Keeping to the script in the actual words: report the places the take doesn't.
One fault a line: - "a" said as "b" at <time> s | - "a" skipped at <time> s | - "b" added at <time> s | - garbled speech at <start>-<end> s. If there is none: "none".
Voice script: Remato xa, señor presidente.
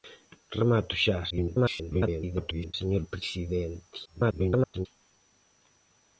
- garbled speech at 1.3-2.7 s
- garbled speech at 4.1-4.9 s